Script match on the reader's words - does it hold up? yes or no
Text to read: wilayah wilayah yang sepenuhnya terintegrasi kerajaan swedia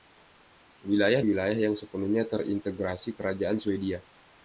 yes